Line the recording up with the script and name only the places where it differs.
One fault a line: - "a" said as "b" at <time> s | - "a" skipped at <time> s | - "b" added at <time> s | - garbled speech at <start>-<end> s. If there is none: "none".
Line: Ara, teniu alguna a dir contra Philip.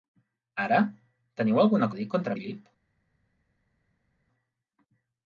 none